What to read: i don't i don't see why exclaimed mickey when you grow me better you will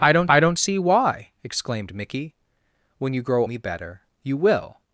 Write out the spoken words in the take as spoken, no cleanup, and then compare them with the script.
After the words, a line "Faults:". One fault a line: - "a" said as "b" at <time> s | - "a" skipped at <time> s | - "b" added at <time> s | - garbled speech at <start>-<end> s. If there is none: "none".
i don't i don't see why exclaimed mickey when you grow me better you will
Faults:
none